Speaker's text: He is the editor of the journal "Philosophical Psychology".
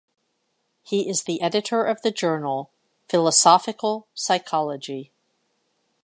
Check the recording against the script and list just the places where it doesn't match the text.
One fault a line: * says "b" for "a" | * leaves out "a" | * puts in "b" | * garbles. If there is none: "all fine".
all fine